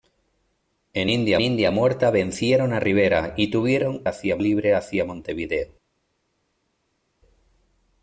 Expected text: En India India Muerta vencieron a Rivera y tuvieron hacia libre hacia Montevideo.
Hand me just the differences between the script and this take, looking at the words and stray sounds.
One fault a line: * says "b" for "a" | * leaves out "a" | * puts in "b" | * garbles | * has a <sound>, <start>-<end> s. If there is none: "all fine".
all fine